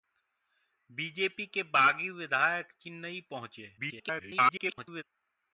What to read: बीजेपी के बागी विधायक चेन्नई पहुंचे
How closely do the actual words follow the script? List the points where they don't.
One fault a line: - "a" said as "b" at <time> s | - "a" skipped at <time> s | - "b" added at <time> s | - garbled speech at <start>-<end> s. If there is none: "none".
- garbled speech at 3.8-5.0 s